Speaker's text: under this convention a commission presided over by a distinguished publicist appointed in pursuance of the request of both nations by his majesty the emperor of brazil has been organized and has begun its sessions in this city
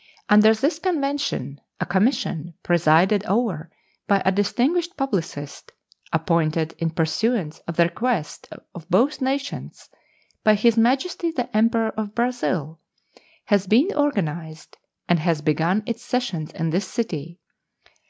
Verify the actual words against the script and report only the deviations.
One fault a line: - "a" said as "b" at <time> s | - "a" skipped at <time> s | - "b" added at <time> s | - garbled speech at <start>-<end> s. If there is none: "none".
none